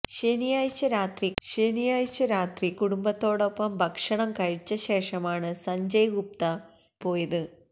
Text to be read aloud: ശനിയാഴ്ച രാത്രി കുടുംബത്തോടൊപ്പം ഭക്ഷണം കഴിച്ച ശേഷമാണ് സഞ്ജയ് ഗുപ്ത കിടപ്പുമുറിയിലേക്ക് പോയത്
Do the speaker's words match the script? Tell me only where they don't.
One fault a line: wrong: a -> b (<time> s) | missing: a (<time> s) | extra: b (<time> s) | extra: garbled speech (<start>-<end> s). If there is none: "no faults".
extra: ശനിയാഴ്ച രാത്രി (1.4 s)
missing: കിടപ്പുമുറിയിലേക്ക് (6.5 s)